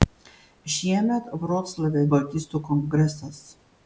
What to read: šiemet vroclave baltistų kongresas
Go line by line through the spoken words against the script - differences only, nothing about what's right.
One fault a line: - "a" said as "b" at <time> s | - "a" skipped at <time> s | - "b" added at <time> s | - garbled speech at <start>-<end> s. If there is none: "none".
none